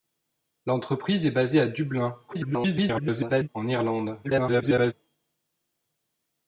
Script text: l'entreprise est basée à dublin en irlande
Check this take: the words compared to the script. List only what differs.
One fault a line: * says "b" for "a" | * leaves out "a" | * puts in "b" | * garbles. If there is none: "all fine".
* garbles
* garbles